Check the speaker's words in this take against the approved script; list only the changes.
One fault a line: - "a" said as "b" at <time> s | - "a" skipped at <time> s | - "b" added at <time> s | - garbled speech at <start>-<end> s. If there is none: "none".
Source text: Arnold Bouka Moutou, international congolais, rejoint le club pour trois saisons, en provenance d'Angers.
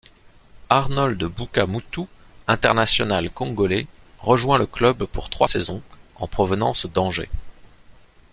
none